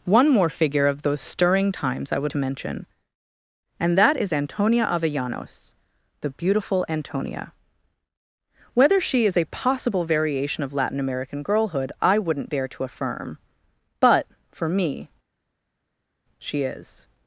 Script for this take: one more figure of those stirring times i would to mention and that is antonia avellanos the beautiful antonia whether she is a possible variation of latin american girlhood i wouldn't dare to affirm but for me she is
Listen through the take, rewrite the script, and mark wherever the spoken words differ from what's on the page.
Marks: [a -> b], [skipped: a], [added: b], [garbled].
one more figure of those stirring times i would to mention and that is antonia avellanos the beautiful antonia whether she is a possible variation of latin american girlhood i wouldn't dare to affirm but for me she is